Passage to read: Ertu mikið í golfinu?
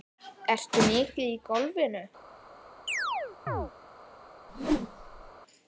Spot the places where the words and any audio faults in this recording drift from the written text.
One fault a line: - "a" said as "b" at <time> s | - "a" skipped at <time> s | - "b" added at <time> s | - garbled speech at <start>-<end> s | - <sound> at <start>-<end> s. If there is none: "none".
- chirp at 2.9-3.7 s
- whoosh at 4.5-5.3 s